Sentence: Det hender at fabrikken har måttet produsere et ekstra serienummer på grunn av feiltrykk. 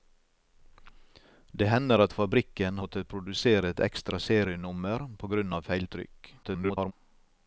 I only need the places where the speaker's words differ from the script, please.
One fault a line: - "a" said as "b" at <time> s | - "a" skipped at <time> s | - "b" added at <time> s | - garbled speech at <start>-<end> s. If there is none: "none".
- "har" skipped at 2.8 s
- garbled speech at 6.4-6.9 s